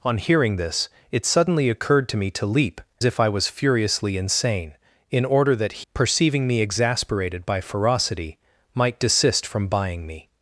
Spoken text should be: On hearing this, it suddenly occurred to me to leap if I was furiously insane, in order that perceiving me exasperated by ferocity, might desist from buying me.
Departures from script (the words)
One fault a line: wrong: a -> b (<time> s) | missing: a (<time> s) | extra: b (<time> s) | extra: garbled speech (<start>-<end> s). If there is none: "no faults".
no faults